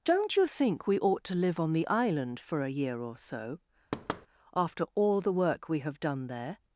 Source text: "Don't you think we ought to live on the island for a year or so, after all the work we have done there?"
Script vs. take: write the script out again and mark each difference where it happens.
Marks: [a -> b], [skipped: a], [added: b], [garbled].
"Don't you think we ought to live on the island for a year or so, after all the work we have done there?"